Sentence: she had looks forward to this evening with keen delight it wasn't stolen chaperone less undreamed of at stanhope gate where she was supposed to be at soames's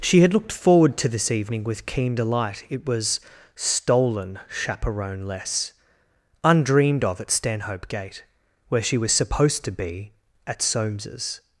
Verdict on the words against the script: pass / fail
fail